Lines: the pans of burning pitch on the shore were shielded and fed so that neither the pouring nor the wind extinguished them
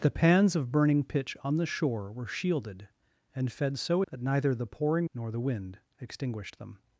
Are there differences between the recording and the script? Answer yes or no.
no